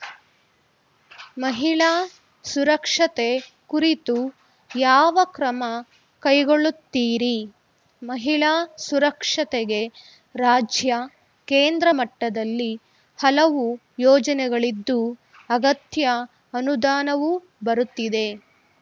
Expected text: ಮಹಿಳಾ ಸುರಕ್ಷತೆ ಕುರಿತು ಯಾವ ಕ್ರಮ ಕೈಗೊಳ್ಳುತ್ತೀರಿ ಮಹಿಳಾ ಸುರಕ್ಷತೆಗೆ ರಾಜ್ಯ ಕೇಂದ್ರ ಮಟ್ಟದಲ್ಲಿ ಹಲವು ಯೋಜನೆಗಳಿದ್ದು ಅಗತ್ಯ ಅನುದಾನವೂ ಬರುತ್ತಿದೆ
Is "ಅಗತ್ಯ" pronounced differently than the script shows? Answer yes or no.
no